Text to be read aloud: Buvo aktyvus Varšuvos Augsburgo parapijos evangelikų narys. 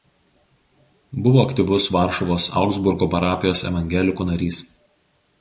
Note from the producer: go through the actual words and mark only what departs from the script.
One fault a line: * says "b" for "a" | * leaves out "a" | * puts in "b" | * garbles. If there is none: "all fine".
all fine